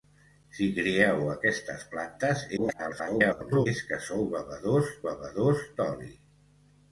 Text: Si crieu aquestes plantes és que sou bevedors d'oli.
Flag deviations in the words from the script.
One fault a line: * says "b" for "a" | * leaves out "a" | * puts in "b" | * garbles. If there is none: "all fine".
* garbles
* puts in "bevedors"